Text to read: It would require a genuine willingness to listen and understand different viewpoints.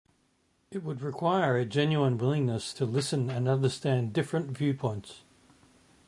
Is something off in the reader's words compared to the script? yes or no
no